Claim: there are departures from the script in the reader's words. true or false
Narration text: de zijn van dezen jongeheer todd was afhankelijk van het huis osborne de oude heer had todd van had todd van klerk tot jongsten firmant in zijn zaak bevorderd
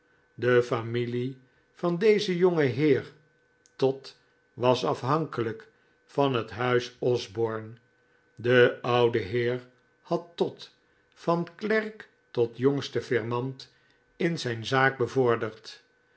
true